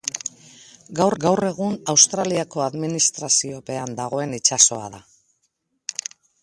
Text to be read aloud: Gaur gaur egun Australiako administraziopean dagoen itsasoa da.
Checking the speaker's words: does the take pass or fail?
pass